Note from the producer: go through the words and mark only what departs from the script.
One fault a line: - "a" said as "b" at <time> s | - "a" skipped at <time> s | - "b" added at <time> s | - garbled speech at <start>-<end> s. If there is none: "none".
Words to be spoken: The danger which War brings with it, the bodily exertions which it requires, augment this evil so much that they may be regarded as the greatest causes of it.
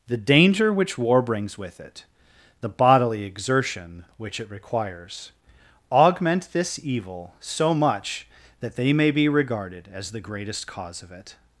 - "exertions" said as "exertion" at 3.2 s
- "causes" said as "cause" at 10.7 s